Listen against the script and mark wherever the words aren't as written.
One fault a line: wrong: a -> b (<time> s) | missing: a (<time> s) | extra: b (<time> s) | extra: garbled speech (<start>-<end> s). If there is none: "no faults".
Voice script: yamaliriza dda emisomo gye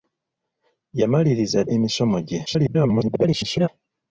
missing: dda (1.6 s)
extra: garbled speech (2.5-3.7 s)